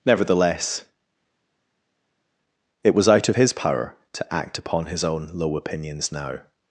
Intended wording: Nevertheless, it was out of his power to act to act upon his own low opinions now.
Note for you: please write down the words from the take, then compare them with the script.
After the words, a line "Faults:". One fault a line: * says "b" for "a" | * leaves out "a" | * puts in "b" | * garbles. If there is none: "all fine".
Nevertheless, it was out of his power to act upon his own low opinions now.
Faults:
* leaves out "to act"